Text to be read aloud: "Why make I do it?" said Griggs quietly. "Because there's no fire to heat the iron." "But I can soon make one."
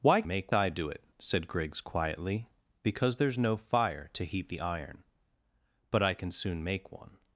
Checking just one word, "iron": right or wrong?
right